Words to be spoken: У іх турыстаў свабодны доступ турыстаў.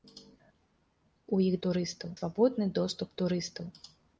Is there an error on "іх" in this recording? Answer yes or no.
no